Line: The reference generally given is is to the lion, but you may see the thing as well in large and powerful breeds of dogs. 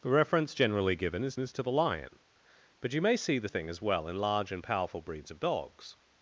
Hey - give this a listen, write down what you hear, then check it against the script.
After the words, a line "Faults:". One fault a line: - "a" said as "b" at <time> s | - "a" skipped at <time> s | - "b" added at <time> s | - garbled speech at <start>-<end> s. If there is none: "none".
The reference generally given is is to the lion, but you may see the thing as well in large and powerful breeds of dogs.
Faults:
none